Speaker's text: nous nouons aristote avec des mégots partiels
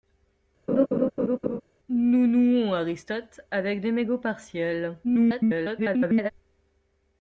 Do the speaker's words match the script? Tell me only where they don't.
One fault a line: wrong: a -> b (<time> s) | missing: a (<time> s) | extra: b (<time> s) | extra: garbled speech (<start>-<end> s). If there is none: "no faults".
extra: garbled speech (5.0-6.3 s)